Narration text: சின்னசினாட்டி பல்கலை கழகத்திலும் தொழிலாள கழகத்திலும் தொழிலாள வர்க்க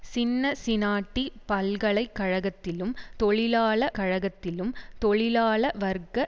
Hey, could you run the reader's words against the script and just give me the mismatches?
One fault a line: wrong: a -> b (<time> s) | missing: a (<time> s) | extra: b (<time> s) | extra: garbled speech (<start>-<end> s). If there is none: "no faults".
no faults